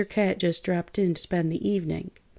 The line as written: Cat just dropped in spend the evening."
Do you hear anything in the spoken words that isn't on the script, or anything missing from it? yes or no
no